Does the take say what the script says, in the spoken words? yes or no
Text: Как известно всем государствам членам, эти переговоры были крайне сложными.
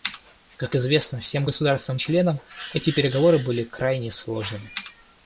yes